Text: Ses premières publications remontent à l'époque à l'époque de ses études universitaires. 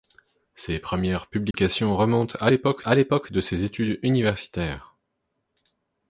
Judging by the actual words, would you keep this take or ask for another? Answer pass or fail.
pass